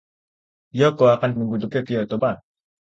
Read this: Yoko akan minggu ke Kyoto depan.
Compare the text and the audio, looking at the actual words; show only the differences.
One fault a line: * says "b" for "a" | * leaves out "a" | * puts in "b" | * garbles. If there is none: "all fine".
all fine